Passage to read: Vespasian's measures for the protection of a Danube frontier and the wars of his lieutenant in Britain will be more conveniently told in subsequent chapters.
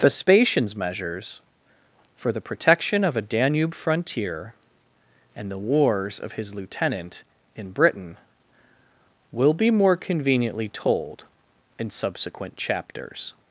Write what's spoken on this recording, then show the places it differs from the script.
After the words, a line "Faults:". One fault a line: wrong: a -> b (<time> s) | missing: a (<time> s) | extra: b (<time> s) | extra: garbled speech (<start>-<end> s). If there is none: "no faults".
Vespasian's measures for the protection of a Danube frontier and the wars of his lieutenant in Britain will be more conveniently told in subsequent chapters.
Faults:
no faults